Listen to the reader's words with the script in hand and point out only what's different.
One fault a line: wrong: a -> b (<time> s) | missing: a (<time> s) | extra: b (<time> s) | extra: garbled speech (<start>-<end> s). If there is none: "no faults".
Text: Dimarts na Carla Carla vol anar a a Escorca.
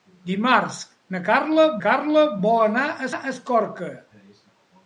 no faults